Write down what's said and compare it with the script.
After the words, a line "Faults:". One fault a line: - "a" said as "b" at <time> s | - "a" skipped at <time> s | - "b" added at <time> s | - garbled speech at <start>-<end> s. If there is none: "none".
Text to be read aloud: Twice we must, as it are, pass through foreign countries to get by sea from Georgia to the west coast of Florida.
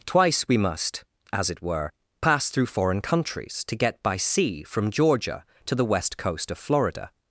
Twice we must, as it were, pass through foreign countries to get by sea from Georgia to the west coast of Florida.
Faults:
- "are" said as "were" at 1.6 s